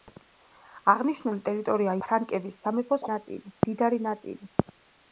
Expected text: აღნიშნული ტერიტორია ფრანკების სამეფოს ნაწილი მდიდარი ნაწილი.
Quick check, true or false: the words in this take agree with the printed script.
true